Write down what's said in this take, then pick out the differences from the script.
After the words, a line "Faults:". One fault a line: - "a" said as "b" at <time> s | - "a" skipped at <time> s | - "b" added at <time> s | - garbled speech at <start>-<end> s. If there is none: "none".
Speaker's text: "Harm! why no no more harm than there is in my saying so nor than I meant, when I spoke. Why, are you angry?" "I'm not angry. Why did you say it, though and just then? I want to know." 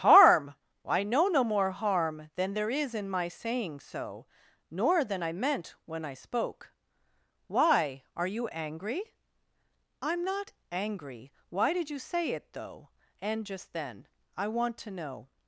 "Harm! I know no more harm than there is in my saying so nor than I meant, when I spoke. Why, are you angry?" "I'm not angry. Why did you say it, though and just then? I want to know."
Faults:
- "why no" said as "I know" at 0.8 s